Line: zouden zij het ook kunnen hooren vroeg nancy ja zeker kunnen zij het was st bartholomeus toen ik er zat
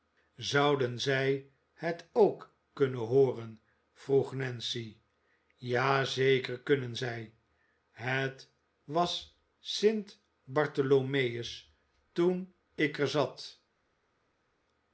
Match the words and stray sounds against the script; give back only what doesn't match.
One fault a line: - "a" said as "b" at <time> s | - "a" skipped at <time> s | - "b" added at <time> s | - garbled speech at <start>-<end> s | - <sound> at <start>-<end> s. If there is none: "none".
none